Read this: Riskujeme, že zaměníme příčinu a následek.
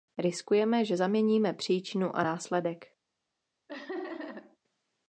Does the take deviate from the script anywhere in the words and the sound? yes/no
yes